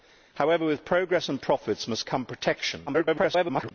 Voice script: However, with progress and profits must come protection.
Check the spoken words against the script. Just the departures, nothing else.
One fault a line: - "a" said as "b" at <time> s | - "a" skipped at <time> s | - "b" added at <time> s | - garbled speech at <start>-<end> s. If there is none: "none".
- garbled speech at 2.9-3.7 s